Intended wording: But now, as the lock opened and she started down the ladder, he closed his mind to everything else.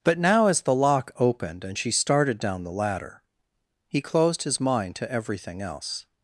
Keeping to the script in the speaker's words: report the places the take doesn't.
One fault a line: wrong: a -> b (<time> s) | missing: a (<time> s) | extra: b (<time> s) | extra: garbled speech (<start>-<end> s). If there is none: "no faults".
no faults